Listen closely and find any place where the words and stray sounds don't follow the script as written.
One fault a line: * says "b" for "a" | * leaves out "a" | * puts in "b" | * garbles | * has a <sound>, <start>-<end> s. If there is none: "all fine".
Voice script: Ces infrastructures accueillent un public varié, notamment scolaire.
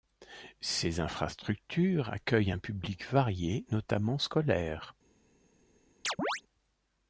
* has a chirp, 6.0-6.4 s